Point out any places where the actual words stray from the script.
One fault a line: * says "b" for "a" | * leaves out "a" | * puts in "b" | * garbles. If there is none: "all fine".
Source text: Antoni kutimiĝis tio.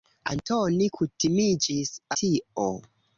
all fine